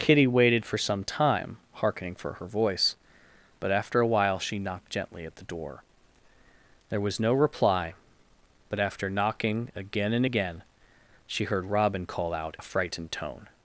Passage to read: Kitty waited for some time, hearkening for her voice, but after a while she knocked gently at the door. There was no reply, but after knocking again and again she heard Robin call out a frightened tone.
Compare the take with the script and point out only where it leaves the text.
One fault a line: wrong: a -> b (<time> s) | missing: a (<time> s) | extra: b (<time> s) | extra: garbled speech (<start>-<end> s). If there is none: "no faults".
no faults